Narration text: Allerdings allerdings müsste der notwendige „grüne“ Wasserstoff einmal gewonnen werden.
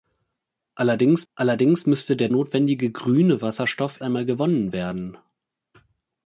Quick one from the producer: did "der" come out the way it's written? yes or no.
yes